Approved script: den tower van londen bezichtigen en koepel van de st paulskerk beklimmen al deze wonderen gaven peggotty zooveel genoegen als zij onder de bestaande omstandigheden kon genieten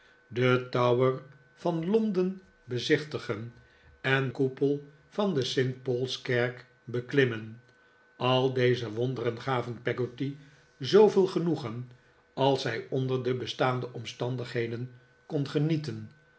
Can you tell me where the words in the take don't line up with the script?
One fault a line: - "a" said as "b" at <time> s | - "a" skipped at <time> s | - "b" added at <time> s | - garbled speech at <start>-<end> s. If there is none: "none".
none